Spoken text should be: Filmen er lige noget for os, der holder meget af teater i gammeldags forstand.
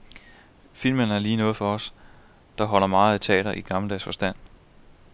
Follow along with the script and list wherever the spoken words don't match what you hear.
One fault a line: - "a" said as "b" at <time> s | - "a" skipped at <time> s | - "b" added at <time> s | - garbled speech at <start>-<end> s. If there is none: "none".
none